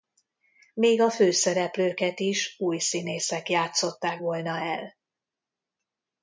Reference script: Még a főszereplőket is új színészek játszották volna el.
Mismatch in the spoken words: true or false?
false